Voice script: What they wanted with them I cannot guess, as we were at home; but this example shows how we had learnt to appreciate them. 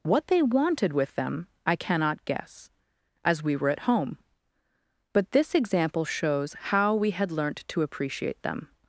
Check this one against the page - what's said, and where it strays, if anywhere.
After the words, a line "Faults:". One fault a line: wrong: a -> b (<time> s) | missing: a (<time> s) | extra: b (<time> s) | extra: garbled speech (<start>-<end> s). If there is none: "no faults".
What they wanted with them I cannot guess, as we were at home; but this example shows how we had learnt to appreciate them.
Faults:
no faults